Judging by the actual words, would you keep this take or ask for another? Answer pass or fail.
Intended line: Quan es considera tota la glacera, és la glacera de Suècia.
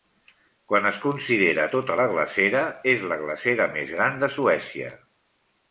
fail